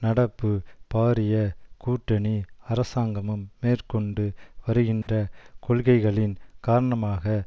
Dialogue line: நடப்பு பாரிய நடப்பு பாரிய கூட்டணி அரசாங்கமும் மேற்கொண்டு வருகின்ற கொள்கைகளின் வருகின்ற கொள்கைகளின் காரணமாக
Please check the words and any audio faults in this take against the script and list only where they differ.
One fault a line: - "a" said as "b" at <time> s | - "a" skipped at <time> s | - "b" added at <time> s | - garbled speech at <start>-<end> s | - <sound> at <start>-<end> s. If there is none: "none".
- "நடப்பு பாரிய" skipped at 1.4 s
- dropout at 5.0-5.1 s
- "வருகின்ற கொள்கைகளின்" skipped at 6.3 s